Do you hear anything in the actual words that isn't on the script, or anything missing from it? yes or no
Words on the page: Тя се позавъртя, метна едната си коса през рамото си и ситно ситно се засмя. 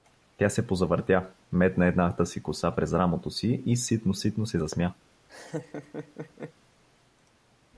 no